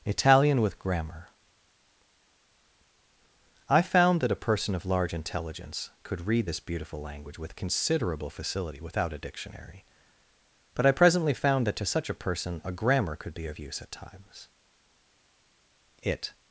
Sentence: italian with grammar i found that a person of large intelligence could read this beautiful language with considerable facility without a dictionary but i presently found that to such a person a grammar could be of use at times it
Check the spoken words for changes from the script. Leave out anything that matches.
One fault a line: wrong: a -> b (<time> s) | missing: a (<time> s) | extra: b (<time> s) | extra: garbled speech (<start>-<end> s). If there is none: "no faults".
no faults